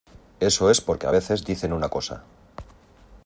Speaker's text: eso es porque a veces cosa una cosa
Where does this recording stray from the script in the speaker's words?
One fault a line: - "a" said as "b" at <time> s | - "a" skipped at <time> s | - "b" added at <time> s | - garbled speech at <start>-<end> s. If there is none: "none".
- "cosa" said as "dicen" at 1.4 s